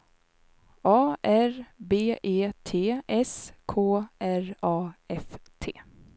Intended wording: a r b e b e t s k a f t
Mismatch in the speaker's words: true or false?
true